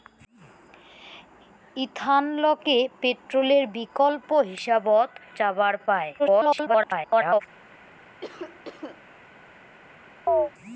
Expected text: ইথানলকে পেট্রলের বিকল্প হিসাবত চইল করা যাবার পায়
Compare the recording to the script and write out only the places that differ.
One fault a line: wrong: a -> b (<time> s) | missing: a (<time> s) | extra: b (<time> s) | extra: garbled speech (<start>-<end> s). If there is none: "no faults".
missing: চইল করা (5.1 s)
extra: garbled speech (6.2-7.4 s)